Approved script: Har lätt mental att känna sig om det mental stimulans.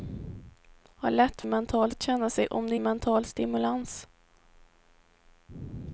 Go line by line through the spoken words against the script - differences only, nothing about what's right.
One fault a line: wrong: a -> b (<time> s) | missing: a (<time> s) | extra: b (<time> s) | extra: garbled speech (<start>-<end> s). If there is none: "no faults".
no faults